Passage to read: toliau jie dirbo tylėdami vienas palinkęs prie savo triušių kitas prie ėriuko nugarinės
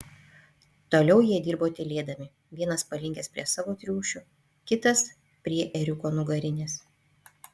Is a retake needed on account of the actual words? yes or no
no